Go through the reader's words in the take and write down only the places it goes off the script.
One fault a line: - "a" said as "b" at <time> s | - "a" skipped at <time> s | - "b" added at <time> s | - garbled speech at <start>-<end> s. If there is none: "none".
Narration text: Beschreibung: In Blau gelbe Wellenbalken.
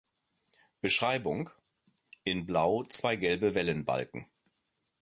- "zwei" added at 2.9 s